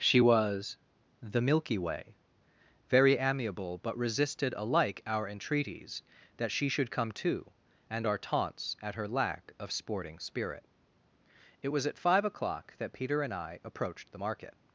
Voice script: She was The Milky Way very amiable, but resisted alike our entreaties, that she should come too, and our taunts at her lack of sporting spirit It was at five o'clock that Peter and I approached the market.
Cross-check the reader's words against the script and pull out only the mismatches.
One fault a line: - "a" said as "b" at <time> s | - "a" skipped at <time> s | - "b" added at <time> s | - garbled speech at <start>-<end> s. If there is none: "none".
none